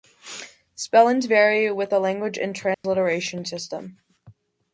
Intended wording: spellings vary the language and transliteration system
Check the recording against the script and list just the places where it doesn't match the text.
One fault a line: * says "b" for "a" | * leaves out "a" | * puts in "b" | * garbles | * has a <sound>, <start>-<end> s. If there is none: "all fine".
* puts in "with"
* has a dropout, 2.7-2.8 s